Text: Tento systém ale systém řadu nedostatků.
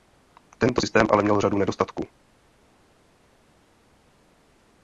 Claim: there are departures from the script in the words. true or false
true